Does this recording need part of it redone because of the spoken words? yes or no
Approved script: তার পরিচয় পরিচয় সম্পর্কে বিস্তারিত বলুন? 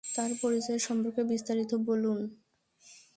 yes